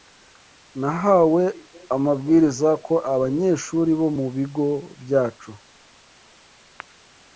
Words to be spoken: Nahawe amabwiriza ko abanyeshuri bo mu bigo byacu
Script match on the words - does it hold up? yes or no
yes